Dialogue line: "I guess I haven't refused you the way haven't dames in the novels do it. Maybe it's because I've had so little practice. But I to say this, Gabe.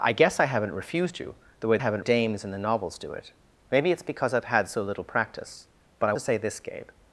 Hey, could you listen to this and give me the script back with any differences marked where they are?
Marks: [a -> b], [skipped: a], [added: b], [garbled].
"I guess I haven't refused you the way haven't dames in the novels do it. Maybe it's because I've had so little practice. But I to say this, Gabe.